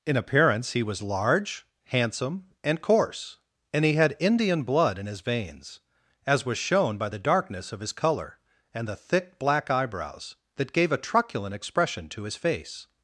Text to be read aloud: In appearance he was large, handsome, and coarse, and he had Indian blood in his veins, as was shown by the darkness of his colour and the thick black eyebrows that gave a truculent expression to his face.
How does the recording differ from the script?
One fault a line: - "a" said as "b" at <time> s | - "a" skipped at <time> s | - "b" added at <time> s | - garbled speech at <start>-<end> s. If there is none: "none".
none